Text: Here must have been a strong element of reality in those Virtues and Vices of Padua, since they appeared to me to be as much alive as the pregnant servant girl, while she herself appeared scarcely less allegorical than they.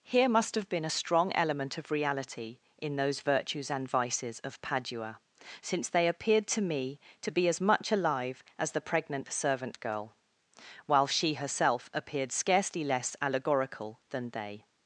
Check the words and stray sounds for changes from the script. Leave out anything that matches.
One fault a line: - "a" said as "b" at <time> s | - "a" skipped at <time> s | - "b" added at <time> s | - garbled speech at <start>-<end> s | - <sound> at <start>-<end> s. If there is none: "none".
none